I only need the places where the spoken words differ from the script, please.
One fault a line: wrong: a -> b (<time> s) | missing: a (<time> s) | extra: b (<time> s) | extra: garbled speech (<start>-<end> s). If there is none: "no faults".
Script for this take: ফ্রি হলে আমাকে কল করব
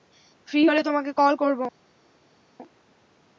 wrong: আমাকে -> তোমাকে (0.8 s)